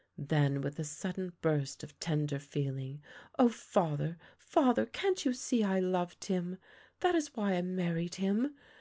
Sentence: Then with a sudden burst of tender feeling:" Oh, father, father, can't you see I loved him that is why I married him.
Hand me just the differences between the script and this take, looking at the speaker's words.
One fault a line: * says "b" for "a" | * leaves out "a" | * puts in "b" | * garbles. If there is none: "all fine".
all fine